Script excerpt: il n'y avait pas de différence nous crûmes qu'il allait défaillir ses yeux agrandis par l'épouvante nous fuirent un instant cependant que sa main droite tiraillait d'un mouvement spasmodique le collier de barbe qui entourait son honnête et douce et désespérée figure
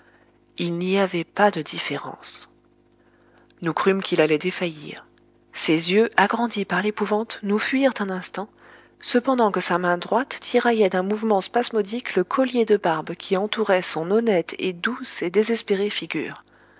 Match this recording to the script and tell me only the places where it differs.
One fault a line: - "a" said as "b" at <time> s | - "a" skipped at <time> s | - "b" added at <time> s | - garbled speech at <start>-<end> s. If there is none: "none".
none